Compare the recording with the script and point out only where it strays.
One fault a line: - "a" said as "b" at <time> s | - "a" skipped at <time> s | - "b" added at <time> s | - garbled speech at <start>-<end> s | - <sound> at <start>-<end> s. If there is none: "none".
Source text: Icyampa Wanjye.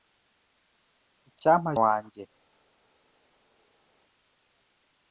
none